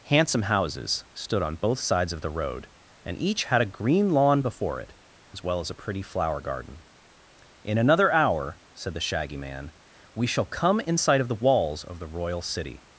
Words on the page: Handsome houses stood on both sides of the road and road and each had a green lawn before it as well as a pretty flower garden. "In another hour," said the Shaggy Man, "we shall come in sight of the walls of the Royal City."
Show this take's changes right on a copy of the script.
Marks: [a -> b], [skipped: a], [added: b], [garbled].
Handsome houses stood on both sides of the road and [skipped: road and] each had a green lawn before it as well as a pretty flower garden. "In another hour," said the Shaggy Man, "we shall come in sight of the walls of the Royal City."